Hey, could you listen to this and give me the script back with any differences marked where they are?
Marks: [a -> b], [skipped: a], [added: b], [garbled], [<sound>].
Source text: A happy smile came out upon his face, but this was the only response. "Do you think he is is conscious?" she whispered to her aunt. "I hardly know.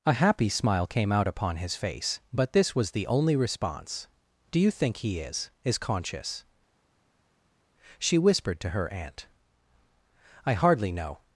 A happy smile came out upon his face, but this was the only response. "Do you think he is is conscious?" she whispered to her aunt. "I hardly know.